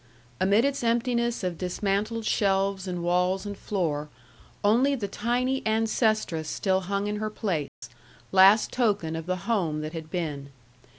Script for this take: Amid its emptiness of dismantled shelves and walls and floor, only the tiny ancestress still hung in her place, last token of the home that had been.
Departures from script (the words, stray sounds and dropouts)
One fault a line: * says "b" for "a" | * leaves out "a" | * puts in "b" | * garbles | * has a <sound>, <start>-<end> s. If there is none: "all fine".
* has a dropout, 7.7-7.8 s